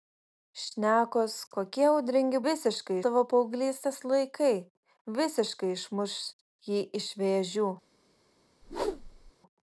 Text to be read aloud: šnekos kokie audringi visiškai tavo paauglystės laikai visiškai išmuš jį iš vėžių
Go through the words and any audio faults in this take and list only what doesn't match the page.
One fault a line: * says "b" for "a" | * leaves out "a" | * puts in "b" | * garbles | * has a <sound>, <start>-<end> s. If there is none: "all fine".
* has a whoosh, 8.6-9.3 s